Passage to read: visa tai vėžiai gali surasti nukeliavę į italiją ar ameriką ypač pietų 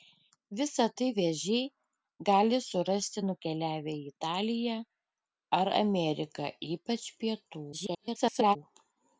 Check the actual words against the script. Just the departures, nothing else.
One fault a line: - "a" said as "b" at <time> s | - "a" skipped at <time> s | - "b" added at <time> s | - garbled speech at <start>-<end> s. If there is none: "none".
- garbled speech at 7.7-8.6 s